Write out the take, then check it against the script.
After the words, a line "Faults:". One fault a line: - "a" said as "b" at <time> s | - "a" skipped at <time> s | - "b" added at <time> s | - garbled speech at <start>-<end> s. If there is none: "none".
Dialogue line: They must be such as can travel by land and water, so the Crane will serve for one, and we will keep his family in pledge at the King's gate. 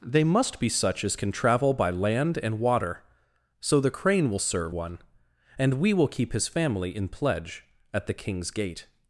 They must be such as can travel by land and water, so the Crane will serve one, and we will keep his family in pledge at the King's gate.
Faults:
- "for" skipped at 4.8 s